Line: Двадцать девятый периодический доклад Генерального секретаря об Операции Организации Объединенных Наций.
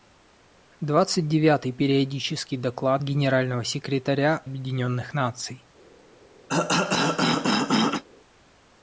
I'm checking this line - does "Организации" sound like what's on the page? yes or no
no